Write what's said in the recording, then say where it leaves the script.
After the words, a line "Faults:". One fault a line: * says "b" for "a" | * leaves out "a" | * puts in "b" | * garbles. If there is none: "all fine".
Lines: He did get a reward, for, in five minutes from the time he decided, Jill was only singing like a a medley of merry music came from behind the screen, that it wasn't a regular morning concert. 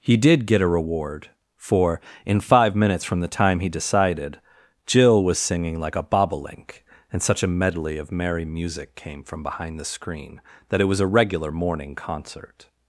He did get a reward, for, in five minutes from the time he decided, Jill was singing like a bobolink, and such a medley of merry music came from behind the screen, that it was a regular morning concert.
Faults:
* leaves out "only"
* puts in "bobolink and such"
* says "was" for "wasn't"